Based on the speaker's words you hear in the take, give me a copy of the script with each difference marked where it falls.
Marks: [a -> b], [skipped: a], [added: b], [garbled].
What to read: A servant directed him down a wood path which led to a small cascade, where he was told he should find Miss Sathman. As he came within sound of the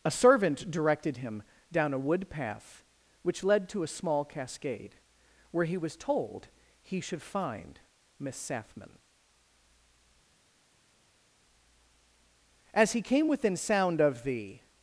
A servant directed him down a wood path which led to a small cascade, where he was told he should find Miss Sathman. As he came within sound of the